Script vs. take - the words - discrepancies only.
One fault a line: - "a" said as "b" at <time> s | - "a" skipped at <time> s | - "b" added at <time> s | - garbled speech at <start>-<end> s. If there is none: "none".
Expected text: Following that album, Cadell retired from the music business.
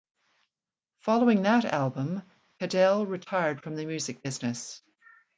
none